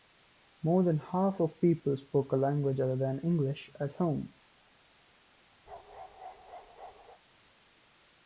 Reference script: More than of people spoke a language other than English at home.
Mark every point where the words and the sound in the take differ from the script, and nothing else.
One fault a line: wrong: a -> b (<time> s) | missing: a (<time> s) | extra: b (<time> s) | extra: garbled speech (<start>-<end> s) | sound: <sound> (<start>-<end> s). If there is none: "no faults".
extra: half (1.0 s)
sound: bark (5.7-7.2 s)